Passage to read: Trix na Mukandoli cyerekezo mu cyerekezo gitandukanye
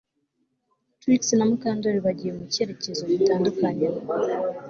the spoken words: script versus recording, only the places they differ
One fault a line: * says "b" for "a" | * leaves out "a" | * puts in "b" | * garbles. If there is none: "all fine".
* says "bagiye" for "cyerekezo"